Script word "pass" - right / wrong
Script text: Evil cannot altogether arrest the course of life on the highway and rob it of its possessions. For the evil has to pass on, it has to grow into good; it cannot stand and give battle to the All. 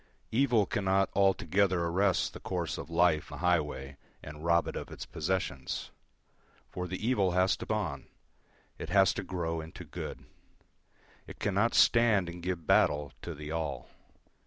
wrong